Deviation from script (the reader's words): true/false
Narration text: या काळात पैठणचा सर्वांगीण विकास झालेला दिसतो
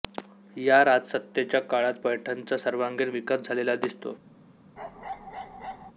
true